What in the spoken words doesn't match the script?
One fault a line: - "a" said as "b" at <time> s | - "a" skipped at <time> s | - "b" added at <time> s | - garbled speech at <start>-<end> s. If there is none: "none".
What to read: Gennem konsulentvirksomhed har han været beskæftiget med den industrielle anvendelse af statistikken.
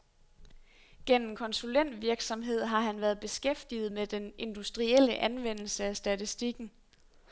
none